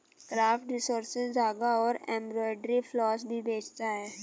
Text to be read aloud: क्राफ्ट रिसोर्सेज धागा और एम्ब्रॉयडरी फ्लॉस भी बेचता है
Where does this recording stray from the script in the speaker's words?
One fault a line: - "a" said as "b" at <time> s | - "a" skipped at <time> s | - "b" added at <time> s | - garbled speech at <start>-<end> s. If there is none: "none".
none